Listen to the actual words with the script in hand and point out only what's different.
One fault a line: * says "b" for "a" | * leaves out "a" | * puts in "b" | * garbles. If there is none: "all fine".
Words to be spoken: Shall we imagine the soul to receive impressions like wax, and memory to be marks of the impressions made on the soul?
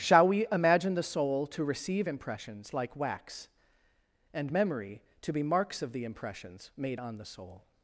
all fine